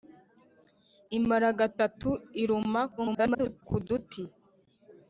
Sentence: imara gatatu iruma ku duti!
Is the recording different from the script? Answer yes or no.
yes